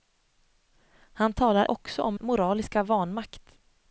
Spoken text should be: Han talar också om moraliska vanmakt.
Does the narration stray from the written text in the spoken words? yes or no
no